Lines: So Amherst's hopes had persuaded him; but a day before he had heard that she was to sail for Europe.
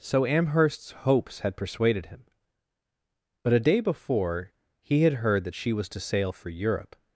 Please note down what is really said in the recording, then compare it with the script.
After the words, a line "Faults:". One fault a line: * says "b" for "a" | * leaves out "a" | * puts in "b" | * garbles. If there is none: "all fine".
So Amherst's hopes had persuaded him; but a day before he had heard that she was to sail for Europe.
Faults:
all fine